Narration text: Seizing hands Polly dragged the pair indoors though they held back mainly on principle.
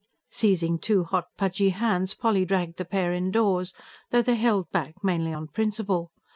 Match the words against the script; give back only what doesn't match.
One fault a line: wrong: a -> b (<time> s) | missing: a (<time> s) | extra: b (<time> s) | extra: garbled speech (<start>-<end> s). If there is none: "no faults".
extra: two hot pudgy (0.8 s)